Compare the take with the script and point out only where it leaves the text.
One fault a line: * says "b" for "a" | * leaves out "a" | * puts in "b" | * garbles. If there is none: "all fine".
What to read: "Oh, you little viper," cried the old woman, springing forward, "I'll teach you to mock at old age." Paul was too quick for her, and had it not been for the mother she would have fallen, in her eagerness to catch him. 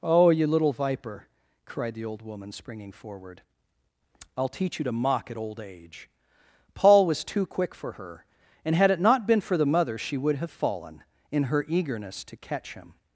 all fine